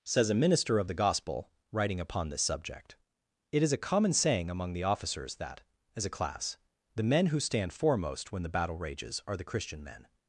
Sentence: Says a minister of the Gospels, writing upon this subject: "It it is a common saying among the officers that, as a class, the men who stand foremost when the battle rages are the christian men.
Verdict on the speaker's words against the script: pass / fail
fail